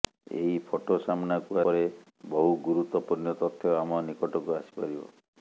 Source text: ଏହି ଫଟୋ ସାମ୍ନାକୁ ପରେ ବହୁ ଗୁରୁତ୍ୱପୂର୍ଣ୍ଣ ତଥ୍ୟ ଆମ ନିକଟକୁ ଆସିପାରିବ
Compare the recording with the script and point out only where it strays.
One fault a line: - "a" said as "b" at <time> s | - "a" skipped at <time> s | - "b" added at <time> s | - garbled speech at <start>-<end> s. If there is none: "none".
none